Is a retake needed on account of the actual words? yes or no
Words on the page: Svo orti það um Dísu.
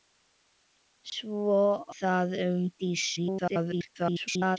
yes